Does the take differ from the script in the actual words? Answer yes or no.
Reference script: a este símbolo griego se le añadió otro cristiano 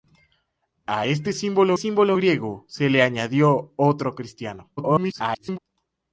yes